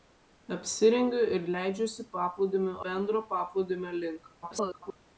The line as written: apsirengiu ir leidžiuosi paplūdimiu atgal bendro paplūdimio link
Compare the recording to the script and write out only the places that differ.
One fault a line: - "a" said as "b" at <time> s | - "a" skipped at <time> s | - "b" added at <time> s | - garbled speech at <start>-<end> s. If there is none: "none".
- "atgal" skipped at 2.8 s
- garbled speech at 4.4-5.0 s